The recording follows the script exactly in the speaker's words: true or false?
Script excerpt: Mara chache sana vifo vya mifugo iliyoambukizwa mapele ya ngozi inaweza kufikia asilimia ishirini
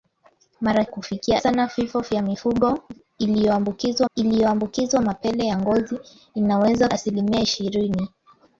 false